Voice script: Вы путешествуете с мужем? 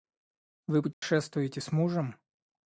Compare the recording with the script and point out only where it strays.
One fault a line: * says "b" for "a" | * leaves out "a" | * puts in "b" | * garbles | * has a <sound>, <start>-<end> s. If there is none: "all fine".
* has a dropout, 0.9-1.0 s